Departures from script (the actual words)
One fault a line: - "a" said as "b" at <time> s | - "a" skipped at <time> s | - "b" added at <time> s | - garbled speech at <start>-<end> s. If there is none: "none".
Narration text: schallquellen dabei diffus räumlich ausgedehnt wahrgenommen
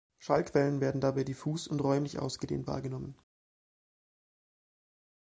- "werden" added at 0.8 s
- "und" added at 1.7 s